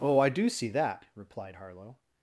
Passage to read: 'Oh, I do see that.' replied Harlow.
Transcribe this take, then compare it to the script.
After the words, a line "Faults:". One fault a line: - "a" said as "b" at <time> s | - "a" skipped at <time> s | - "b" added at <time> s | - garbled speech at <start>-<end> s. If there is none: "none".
'Oh, I do see that.' replied Harlow.
Faults:
none